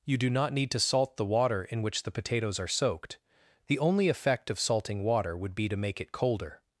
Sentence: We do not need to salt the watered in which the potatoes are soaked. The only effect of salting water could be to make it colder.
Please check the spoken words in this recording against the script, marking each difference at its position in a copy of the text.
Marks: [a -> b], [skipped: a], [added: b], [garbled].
[We -> You] do not need to salt the [watered -> water] in which the potatoes are soaked. The only effect of salting water [could -> would] be to make it colder.